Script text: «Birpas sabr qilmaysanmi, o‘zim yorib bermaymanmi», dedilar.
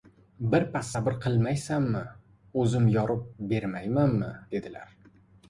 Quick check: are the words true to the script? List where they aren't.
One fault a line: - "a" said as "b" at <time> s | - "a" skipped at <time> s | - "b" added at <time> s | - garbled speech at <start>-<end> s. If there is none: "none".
none